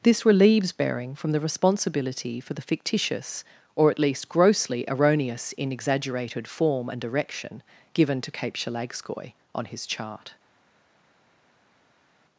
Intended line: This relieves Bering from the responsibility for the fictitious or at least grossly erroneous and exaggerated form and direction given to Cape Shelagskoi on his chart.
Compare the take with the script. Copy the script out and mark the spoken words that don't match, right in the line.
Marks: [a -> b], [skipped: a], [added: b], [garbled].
This relieves Bering from the responsibility for the fictitious or at least grossly erroneous [and -> in] exaggerated form and direction given to Cape Shelagskoi on his chart.